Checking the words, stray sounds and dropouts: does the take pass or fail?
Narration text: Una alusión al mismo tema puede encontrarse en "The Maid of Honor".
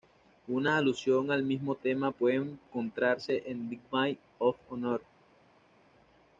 pass